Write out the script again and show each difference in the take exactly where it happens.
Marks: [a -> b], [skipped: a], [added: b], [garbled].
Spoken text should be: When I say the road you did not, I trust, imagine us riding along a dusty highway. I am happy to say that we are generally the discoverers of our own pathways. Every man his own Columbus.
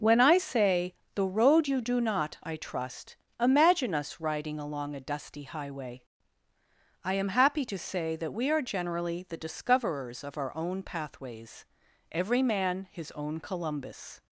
When I say the road you [did -> do] not, I trust, imagine us riding along a dusty highway. I am happy to say that we are generally the discoverers of our own pathways. Every man his own Columbus.